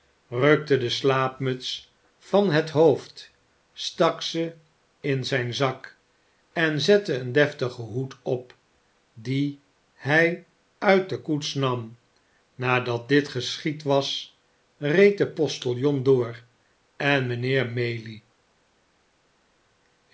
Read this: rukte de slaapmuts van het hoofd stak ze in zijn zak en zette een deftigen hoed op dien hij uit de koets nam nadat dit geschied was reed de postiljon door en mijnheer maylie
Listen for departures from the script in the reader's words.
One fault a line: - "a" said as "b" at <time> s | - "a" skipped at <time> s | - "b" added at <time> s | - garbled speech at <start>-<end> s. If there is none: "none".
none